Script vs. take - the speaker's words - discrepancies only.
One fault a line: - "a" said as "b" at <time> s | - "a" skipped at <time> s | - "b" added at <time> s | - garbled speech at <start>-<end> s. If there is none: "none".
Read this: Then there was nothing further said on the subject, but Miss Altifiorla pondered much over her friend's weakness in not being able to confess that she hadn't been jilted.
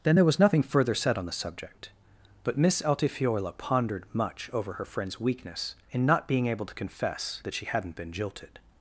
none